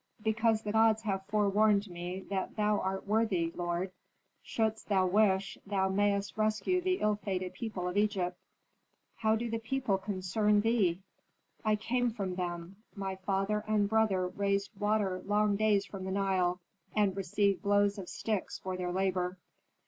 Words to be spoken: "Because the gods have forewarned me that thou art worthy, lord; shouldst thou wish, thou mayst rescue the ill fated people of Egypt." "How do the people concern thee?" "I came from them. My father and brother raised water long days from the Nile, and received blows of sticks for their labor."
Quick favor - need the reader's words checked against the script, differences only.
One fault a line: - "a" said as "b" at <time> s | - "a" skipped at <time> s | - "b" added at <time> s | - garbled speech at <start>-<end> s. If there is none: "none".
none